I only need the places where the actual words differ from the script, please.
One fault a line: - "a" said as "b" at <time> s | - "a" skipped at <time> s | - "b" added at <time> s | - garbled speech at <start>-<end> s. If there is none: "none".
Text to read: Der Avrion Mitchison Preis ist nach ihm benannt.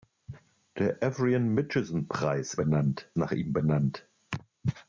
- "ist" said as "benannt" at 2.5 s